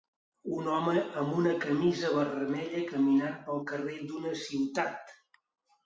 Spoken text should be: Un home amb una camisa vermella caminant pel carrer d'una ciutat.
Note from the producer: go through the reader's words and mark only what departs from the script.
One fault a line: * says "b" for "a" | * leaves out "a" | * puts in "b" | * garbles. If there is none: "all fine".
all fine